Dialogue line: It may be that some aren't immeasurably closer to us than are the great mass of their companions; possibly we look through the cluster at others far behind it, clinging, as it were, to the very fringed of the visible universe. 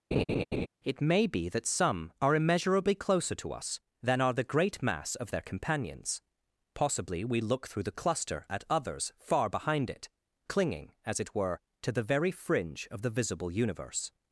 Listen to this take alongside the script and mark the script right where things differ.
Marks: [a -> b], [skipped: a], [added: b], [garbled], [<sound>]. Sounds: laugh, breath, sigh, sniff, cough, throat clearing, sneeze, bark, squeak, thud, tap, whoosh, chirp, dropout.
[laugh] It may be that some [aren't -> are] immeasurably closer to us than are the great mass of their companions; possibly we look through the cluster at others far behind it, clinging, as it were, to the very [fringed -> fringe] of the visible universe.